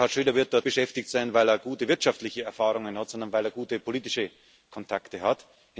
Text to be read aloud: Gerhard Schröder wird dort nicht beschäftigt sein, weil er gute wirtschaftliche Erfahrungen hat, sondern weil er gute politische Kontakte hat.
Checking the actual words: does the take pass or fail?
fail